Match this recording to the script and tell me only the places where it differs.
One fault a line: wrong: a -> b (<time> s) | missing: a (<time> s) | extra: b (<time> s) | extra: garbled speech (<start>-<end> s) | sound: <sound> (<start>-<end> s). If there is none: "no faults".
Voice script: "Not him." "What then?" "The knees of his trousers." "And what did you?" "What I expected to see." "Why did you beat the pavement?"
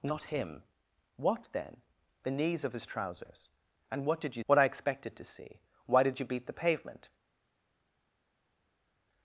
no faults